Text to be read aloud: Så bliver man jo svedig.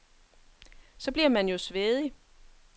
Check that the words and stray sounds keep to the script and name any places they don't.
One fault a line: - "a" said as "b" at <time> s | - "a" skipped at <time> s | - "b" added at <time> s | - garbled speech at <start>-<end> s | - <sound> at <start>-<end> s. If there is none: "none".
none